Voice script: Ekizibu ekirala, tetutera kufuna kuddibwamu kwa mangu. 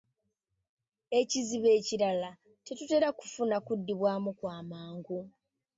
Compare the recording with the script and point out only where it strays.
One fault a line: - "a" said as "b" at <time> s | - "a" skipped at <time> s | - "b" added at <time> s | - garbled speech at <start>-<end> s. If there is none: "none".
none